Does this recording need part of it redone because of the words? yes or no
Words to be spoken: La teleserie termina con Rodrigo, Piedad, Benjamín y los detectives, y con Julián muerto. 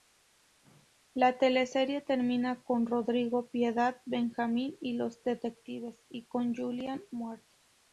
no